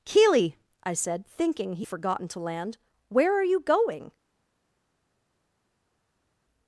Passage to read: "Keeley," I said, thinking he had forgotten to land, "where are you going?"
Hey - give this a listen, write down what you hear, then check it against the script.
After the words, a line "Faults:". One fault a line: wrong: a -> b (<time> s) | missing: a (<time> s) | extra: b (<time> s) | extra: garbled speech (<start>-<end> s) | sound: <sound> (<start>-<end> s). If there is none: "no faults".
"Keeley," I said, thinking he forgotten to land, "where are you going?"
Faults:
missing: had (1.9 s)